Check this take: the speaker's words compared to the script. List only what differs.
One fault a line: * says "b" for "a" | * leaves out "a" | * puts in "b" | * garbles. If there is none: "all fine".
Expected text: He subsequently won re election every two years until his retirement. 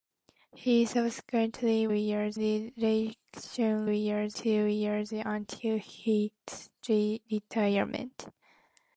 * says "years" for "won"
* says "years" for "every"